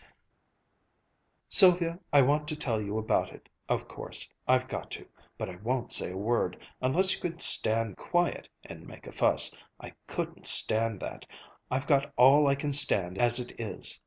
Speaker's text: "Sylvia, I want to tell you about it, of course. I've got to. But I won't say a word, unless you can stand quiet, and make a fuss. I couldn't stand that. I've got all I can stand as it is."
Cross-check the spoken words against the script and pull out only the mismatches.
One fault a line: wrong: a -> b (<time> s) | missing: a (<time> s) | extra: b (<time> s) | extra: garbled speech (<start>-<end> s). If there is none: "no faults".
no faults